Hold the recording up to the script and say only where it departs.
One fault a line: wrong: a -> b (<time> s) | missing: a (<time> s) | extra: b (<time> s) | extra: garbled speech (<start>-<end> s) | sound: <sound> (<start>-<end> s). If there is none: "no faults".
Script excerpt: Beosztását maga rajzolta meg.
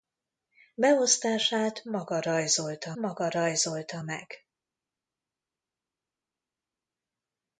extra: maga rajzolta (2.9 s)